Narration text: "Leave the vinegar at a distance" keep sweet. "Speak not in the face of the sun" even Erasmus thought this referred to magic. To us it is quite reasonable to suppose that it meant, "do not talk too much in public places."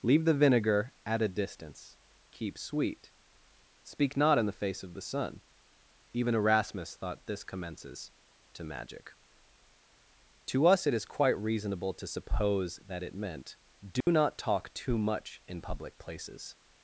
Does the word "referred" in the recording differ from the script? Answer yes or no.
yes